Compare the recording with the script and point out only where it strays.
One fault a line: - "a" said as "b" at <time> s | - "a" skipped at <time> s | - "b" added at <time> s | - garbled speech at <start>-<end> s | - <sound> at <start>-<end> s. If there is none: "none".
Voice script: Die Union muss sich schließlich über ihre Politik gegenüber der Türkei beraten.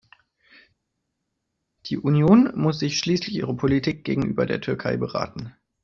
- "über" skipped at 3.4 s